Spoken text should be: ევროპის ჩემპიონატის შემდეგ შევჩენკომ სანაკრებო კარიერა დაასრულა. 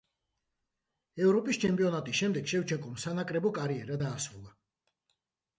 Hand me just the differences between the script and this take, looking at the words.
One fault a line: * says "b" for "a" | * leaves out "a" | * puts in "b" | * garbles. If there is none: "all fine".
all fine